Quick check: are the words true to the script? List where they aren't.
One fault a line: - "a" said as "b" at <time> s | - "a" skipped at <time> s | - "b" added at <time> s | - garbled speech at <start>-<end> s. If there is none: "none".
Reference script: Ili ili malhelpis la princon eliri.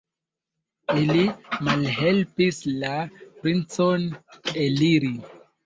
- "ili" skipped at 1.2 s